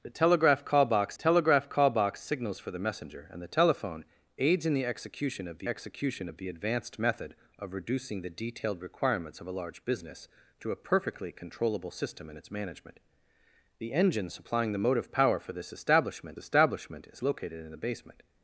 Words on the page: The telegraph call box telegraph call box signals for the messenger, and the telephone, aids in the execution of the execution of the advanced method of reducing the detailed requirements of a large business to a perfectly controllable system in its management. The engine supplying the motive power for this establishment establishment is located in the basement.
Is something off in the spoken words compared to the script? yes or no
no